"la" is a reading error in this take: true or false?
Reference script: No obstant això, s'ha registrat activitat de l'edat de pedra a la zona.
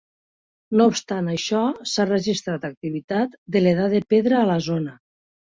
false